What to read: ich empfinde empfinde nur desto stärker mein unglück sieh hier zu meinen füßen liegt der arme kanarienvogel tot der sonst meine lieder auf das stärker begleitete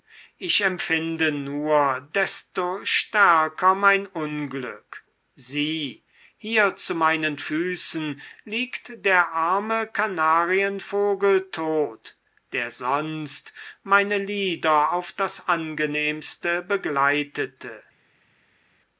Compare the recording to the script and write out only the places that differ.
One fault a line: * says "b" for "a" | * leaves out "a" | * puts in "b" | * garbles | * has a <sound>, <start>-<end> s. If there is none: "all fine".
* leaves out "empfinde"
* says "angenehmste" for "stärker"